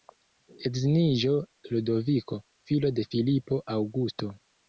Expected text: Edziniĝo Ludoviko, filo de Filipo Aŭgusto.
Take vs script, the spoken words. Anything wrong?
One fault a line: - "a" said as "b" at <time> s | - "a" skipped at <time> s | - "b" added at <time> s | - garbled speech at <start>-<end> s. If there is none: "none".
none